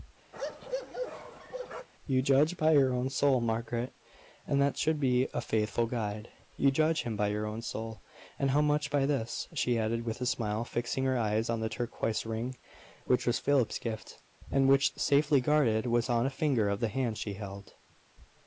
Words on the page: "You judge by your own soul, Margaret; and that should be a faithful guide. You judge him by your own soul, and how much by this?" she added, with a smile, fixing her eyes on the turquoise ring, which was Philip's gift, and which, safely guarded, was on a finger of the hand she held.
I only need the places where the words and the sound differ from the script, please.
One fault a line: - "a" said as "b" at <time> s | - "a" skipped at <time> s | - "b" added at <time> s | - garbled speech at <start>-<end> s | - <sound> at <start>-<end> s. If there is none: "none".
- bark at 0.3-1.9 s